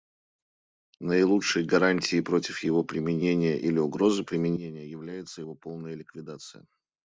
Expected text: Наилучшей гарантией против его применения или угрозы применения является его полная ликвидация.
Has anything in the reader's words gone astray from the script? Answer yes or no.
no